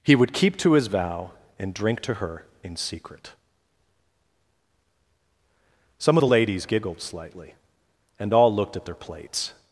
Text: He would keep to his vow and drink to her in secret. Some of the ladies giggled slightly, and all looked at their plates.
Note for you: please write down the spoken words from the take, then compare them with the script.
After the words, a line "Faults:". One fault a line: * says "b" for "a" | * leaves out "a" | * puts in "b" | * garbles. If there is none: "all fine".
He would keep to his vow and drink to her in secret. Some of the ladies giggled slightly, and all looked at their plates.
Faults:
all fine